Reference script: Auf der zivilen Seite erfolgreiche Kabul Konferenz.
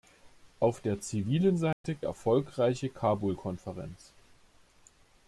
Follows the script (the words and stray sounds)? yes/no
no